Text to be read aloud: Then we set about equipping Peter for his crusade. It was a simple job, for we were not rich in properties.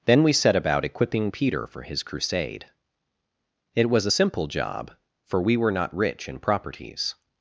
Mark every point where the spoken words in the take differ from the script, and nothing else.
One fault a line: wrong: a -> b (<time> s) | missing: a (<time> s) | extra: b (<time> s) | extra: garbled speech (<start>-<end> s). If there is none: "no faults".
no faults